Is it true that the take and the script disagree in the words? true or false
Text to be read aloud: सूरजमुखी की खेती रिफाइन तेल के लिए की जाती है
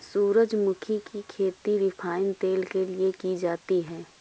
false